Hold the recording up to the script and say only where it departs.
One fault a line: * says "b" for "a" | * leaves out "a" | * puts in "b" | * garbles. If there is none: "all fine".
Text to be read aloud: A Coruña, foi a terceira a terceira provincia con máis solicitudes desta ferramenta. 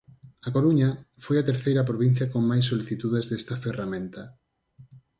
* leaves out "a terceira"